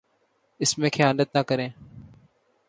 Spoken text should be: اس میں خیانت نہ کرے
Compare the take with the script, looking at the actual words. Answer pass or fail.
pass